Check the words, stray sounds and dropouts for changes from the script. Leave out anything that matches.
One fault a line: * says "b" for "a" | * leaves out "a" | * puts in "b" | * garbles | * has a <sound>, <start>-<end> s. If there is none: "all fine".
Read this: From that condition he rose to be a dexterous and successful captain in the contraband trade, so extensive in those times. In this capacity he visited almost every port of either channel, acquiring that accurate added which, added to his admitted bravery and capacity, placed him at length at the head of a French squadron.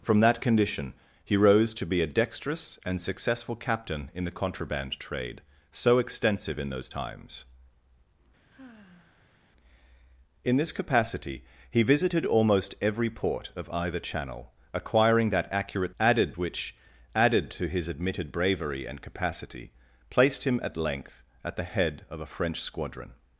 * has a sigh, 8.5-9.4 s